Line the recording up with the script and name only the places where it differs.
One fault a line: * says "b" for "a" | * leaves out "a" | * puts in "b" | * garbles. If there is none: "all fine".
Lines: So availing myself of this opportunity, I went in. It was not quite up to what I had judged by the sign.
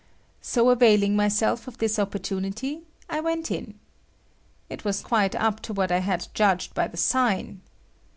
* leaves out "not"